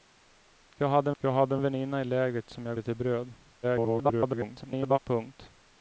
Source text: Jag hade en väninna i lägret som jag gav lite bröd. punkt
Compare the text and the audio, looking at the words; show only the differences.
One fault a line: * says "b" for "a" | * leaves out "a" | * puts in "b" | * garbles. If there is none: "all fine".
* puts in "jag hade"
* leaves out "gav"
* garbles